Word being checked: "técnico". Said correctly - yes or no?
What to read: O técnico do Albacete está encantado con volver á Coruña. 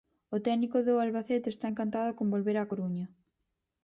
yes